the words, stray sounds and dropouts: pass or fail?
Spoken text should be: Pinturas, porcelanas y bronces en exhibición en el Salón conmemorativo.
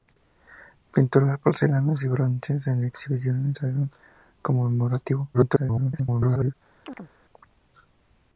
fail